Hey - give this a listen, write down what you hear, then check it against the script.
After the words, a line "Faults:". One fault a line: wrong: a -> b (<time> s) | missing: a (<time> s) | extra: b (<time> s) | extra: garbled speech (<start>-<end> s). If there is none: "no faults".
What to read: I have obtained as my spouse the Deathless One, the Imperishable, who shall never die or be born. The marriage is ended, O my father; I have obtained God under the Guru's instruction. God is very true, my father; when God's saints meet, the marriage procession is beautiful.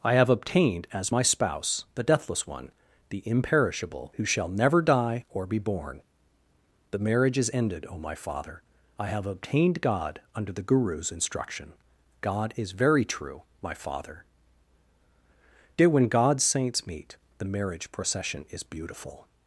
I have obtained as my spouse the Deathless One, the Imperishable, who shall never die or be born. The marriage is ended, O my father; I have obtained God under the Guru's instruction. God is very true, my father; dear when God's saints meet, the marriage procession is beautiful.
Faults:
extra: dear (15.8 s)